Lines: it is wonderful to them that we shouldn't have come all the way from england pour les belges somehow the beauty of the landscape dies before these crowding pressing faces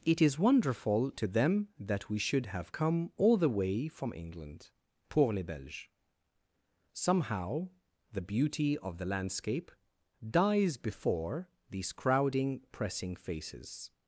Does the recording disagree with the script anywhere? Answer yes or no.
yes